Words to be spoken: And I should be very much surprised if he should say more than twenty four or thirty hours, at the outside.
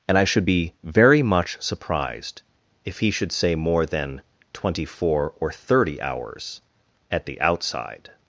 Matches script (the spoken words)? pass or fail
pass